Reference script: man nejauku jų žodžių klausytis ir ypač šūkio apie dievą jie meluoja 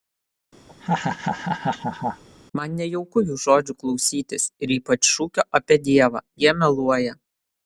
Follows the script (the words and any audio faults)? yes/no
no